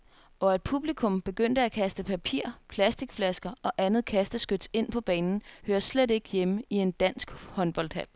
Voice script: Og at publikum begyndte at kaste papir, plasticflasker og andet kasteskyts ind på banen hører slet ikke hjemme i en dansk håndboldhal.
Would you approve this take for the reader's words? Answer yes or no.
yes